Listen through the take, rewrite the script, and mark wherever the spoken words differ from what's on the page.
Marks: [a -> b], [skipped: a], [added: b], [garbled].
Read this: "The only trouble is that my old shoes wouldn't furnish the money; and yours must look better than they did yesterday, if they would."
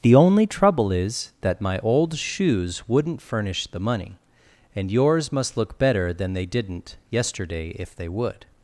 "The only trouble is that my old shoes wouldn't furnish the money; and yours must look better than they [did -> didn't] yesterday, if they would."